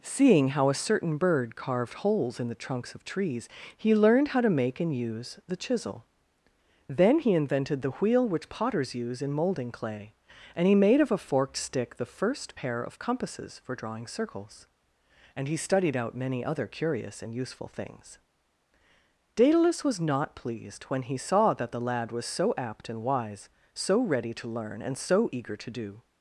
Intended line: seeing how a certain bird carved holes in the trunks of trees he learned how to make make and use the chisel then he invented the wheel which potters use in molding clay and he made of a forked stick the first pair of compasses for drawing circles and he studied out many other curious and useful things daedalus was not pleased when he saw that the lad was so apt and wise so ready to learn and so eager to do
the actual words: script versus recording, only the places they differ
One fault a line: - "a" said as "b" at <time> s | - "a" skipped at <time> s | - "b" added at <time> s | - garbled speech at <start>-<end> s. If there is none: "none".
- "make" skipped at 4.8 s